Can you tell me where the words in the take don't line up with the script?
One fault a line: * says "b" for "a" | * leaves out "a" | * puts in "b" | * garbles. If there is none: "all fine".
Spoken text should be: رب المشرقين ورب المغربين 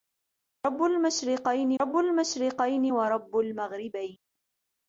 * puts in "رب المشرقين"